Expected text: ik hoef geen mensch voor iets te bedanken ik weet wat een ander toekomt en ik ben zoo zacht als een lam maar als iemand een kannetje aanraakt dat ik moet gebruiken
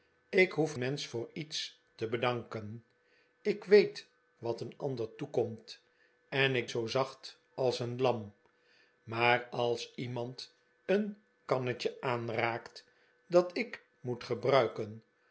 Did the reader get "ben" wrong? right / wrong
wrong